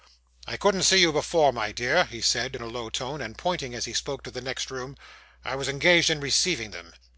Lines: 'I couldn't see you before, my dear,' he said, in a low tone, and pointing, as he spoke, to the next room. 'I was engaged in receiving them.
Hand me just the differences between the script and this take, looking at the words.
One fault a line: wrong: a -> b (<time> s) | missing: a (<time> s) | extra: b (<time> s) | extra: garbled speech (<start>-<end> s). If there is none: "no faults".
no faults